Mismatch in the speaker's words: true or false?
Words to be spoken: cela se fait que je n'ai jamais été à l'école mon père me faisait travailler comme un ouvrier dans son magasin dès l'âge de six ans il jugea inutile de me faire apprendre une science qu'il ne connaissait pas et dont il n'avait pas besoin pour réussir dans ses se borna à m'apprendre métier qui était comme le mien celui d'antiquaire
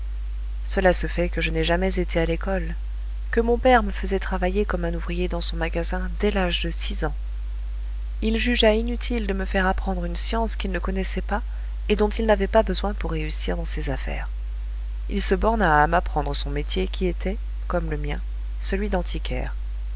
true